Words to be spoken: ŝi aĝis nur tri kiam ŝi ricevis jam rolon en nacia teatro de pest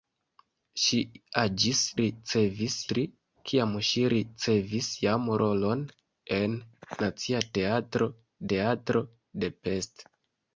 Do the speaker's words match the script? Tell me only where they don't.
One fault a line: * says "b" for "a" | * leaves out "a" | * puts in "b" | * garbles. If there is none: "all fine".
* says "ricevis" for "nur"
* puts in "teatro"